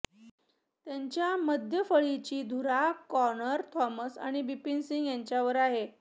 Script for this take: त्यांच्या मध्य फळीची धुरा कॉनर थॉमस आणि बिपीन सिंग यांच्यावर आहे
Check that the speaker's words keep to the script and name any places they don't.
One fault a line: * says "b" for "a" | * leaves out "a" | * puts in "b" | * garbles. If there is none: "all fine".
all fine